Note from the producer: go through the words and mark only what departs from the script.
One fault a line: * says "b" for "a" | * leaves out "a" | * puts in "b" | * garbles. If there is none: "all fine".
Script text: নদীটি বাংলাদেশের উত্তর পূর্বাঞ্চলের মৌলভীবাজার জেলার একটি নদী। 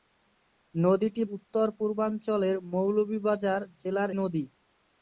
* leaves out "বাংলাদেশের"
* leaves out "একটি"